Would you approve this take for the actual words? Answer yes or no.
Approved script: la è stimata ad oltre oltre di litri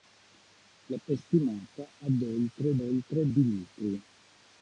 yes